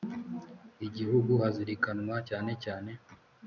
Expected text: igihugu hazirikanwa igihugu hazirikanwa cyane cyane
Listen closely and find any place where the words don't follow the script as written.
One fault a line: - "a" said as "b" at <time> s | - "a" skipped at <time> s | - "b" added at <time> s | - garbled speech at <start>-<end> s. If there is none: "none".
- "igihugu hazirikanwa" skipped at 2.1 s